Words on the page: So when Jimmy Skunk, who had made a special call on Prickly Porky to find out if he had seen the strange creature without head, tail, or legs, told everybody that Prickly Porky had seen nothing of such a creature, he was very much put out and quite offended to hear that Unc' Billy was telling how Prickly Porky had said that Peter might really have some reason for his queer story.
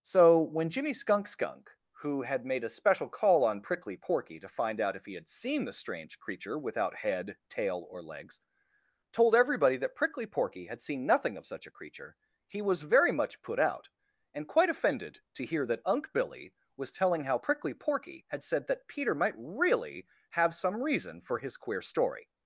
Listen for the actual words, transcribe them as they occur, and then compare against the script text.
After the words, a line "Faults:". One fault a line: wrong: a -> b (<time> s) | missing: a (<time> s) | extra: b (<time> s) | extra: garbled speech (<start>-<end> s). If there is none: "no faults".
So when Jimmy Skunk Skunk, who had made a special call on Prickly Porky to find out if he had seen the strange creature without head, tail, or legs, told everybody that Prickly Porky had seen nothing of such a creature, he was very much put out and quite offended to hear that Unc' Billy was telling how Prickly Porky had said that Peter might really have some reason for his queer story.
Faults:
extra: Skunk (1.3 s)